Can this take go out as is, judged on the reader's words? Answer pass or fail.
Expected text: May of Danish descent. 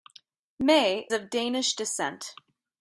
pass